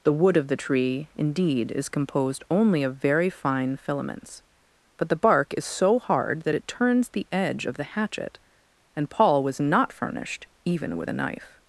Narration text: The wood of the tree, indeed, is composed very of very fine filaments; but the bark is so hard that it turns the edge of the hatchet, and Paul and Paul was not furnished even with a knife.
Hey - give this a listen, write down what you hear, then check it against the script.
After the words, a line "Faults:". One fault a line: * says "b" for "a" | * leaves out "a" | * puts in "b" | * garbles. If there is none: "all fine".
The wood of the tree, indeed, is composed only of very fine filaments; but the bark is so hard that it turns the edge of the hatchet, and Paul was not furnished even with a knife.
Faults:
* says "only" for "very"
* leaves out "and Paul"